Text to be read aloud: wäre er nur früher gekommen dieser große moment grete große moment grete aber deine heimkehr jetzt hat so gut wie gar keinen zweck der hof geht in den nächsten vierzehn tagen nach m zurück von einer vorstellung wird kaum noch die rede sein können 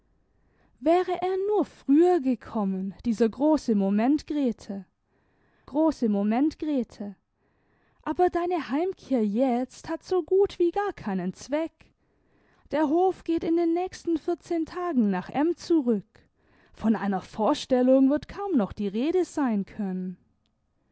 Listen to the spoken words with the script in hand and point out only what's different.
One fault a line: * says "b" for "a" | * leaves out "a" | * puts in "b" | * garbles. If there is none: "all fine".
all fine